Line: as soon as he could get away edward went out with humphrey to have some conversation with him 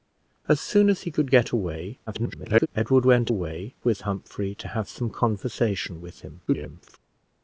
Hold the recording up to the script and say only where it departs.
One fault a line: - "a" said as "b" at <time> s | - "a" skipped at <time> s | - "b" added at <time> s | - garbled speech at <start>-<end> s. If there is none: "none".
- garbled speech at 2.1-2.7 s
- "out" said as "away" at 3.3 s
- garbled speech at 6.5-7.0 s